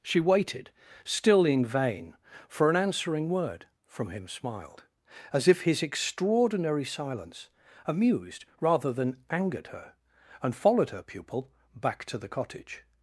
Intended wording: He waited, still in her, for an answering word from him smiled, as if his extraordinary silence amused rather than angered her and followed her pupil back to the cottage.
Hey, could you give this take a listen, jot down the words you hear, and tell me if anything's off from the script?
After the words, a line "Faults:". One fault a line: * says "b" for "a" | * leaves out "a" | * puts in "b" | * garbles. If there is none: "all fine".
She waited, still in vain, for an answering word from him smiled, as if his extraordinary silence amused rather than angered her and followed her pupil back to the cottage.
Faults:
* says "She" for "He"
* says "vain" for "her"